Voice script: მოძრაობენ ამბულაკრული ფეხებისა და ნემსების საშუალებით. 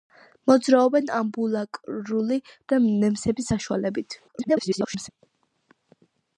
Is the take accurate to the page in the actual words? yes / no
no